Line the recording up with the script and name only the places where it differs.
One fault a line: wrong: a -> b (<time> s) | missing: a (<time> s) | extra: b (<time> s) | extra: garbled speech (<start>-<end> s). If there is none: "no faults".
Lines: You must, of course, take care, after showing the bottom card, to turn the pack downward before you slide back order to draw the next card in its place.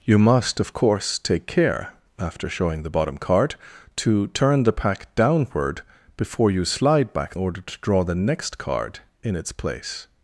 no faults